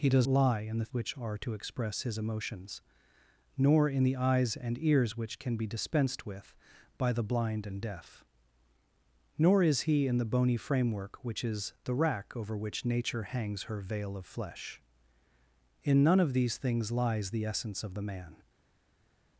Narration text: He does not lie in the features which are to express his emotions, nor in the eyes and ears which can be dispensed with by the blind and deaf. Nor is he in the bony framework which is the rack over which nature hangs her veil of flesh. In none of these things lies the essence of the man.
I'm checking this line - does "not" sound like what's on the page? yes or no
no